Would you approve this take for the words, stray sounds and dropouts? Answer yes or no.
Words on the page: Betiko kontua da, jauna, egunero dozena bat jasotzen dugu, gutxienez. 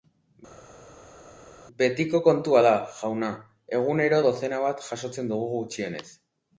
yes